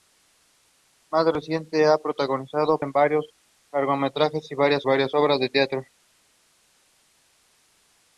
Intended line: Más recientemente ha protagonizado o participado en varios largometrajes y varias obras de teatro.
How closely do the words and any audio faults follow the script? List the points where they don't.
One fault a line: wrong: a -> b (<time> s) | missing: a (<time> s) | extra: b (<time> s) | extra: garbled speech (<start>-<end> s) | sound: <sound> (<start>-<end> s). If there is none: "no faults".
missing: participado (2.8 s)
extra: varias (4.8 s)